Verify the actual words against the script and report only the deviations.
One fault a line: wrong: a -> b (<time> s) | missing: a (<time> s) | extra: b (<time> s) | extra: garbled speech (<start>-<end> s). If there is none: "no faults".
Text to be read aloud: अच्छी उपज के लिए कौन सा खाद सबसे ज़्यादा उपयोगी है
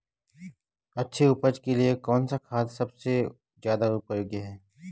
no faults